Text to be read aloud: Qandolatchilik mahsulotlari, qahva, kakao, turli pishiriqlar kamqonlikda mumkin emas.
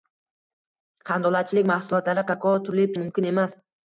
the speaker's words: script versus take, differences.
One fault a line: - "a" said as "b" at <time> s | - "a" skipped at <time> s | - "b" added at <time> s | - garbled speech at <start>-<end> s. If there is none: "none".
- "qahva" skipped at 2.2 s
- "pishiriqlar kamqonlikda" skipped at 2.9 s